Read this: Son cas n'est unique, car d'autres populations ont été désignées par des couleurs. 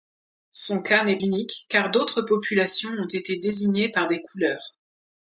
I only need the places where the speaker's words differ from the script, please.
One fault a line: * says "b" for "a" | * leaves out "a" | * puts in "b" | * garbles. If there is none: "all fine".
all fine